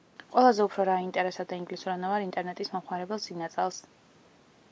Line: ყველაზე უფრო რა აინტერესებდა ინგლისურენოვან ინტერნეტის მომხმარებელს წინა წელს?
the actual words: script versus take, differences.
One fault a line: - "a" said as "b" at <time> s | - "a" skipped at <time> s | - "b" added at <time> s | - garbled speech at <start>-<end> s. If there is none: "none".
none